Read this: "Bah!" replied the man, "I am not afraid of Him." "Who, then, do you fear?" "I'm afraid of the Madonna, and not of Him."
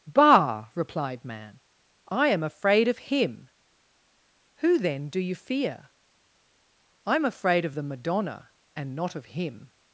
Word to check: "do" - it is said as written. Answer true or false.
true